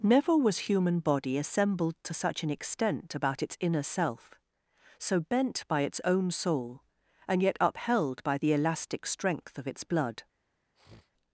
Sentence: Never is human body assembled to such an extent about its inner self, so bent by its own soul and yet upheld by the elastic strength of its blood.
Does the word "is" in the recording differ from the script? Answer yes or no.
yes